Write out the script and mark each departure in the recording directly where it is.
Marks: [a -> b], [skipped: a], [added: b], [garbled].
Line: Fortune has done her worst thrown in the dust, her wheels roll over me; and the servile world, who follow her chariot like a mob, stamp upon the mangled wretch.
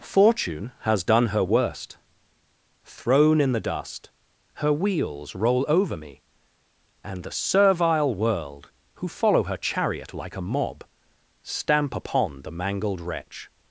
Fortune has done her worst thrown in the dust, her wheels roll over me; and the servile world, who follow her chariot like a mob, stamp upon the mangled wretch.